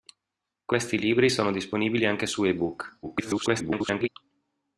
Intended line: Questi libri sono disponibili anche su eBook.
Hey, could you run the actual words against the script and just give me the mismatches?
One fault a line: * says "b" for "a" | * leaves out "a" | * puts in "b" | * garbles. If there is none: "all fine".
* garbles